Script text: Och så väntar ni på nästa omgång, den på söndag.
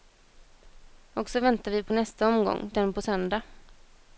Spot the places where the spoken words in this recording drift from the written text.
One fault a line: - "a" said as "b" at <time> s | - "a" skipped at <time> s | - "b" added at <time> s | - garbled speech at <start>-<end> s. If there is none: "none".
- "ni" said as "vi" at 1.7 s